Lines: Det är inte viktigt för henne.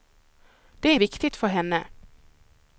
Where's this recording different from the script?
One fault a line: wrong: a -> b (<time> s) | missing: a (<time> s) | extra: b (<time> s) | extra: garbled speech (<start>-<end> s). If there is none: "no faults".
missing: inte (0.9 s)